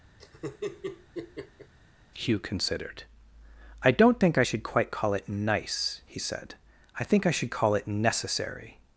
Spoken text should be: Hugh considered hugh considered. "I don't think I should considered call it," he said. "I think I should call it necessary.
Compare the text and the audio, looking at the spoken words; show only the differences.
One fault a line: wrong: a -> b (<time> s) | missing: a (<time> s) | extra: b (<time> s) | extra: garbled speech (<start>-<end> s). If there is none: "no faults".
missing: hugh considered (3.0 s)
wrong: considered -> quite (4.6 s)
extra: nice (5.3 s)